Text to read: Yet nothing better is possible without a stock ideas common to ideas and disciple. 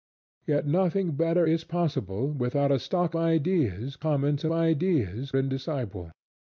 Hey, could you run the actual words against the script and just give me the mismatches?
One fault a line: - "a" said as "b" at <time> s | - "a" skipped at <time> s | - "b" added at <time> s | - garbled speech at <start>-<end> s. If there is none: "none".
none